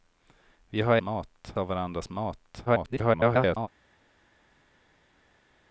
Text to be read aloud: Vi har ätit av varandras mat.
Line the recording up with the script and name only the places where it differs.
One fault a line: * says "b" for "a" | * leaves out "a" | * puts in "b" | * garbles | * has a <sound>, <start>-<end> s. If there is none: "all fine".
* says "mat" for "ätit"
* garbles